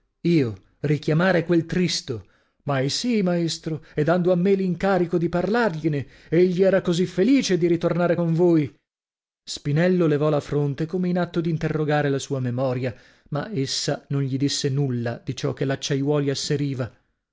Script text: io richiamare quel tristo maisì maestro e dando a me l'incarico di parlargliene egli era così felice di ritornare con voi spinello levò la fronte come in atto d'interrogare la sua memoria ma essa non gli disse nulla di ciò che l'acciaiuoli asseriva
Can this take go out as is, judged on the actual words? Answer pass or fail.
pass